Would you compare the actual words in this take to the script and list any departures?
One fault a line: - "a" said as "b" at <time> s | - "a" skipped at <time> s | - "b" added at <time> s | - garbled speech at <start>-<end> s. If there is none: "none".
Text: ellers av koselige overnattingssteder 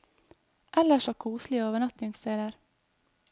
none